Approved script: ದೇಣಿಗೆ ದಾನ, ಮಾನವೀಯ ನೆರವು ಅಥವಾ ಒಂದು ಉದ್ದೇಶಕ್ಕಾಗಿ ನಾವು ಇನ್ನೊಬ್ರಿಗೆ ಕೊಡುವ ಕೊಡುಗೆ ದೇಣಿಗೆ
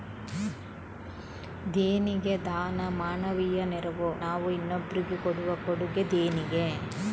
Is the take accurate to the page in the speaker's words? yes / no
no